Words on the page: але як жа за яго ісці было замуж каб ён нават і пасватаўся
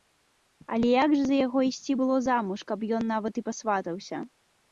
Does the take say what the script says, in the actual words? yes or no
yes